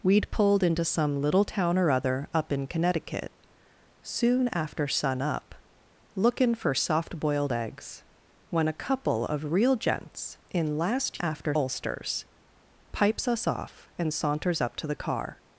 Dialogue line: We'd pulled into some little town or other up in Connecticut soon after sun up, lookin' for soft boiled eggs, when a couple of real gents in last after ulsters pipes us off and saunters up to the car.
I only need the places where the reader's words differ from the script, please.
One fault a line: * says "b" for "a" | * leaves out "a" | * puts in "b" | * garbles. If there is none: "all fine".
all fine